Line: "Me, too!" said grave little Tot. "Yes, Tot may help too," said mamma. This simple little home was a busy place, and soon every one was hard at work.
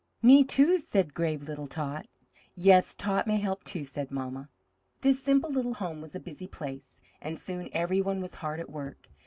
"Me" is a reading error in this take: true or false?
false